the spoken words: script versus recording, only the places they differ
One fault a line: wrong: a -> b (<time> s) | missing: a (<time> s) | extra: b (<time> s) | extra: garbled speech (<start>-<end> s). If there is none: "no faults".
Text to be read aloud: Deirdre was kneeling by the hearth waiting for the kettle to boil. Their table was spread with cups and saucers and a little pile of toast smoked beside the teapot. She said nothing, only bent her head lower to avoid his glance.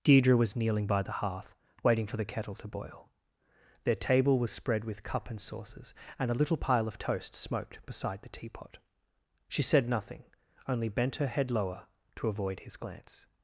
wrong: cups -> cup (5.0 s)